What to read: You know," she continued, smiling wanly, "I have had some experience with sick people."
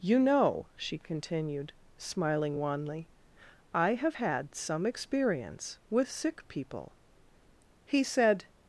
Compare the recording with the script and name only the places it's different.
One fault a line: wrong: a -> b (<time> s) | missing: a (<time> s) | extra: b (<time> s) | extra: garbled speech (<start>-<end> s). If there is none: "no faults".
extra: He said (7.8 s)